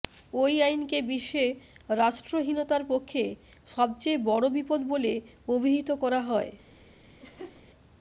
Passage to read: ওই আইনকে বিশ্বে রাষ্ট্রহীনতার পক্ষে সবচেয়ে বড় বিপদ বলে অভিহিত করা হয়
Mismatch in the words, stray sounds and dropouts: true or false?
true